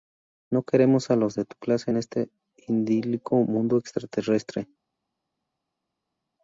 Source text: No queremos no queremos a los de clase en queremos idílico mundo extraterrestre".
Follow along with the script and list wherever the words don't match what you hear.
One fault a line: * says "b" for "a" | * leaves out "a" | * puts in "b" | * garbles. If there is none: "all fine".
* leaves out "no queremos"
* puts in "tu"
* says "este" for "queremos"